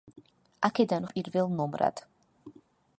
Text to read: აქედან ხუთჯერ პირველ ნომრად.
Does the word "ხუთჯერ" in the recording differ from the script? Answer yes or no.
yes